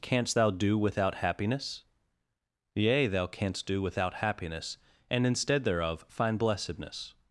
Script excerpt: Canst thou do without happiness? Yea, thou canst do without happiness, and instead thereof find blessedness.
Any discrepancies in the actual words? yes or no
no